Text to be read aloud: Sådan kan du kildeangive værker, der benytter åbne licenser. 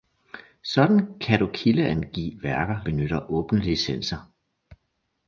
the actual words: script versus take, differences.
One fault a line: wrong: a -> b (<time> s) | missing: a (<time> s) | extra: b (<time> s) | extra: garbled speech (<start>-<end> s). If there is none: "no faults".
missing: der (2.9 s)